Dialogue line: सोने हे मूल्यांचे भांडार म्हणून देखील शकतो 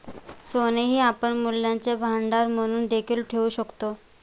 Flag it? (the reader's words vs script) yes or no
yes